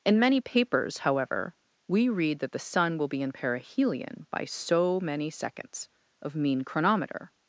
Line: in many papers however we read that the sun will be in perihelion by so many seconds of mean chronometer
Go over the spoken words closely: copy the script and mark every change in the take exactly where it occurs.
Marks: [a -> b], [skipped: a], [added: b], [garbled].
in many papers however we read that the sun will be in perihelion by so many seconds of mean chronometer